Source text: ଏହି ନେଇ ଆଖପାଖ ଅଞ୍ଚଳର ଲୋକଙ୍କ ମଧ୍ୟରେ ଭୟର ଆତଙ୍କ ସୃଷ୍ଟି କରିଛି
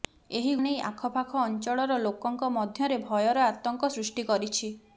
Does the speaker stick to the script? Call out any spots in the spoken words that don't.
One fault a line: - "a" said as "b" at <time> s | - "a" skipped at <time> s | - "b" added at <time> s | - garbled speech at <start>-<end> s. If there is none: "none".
none